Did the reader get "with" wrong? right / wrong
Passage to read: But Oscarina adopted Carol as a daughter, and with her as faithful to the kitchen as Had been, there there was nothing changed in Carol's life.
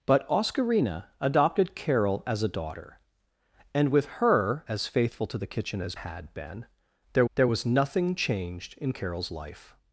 right